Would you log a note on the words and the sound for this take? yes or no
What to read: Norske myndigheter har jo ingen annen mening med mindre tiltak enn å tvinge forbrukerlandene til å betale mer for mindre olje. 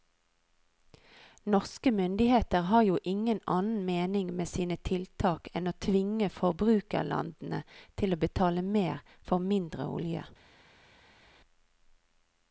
yes